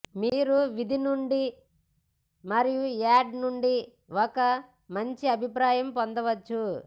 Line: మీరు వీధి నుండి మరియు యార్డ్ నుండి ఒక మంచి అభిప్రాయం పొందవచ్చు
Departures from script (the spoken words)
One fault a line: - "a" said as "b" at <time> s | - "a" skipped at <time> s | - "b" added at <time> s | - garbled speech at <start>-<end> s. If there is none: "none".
none